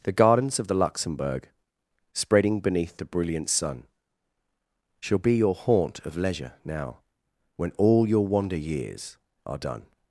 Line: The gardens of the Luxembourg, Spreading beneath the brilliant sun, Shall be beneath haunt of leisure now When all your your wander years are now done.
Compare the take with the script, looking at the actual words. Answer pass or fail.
fail